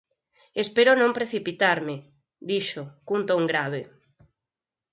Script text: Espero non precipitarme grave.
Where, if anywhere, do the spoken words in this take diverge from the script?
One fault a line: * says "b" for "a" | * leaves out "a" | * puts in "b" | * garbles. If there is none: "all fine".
* puts in "dixo cun ton"